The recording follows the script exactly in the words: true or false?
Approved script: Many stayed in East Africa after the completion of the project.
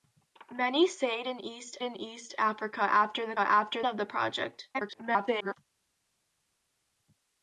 false